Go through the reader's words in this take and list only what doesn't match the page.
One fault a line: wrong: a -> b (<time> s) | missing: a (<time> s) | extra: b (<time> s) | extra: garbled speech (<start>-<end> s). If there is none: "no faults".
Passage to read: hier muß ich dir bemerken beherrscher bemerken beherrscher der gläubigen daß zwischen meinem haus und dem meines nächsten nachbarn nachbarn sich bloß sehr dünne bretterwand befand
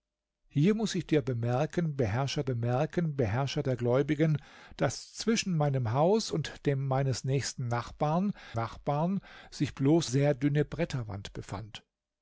no faults